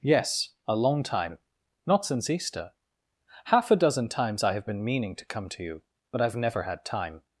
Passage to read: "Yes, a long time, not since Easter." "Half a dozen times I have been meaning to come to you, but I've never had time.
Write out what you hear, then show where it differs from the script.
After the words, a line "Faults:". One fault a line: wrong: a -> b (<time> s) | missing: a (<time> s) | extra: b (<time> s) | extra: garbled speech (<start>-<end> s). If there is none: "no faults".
"Yes, a long time, not since Easter." "Half a dozen times I have been meaning to come to you, but I've never had time.
Faults:
no faults